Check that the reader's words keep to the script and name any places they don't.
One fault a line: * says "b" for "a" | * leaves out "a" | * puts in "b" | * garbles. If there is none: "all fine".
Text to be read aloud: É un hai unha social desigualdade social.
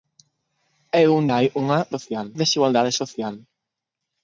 all fine